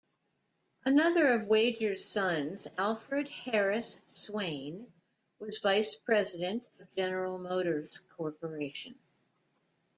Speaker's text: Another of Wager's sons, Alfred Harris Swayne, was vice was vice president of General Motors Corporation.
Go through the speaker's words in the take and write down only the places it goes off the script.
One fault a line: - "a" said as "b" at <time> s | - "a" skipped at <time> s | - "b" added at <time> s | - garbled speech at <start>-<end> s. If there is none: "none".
- "was vice" skipped at 6.0 s